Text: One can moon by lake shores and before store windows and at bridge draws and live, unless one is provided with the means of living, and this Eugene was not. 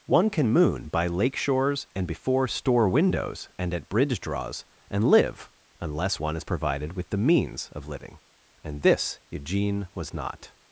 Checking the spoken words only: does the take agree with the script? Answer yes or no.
yes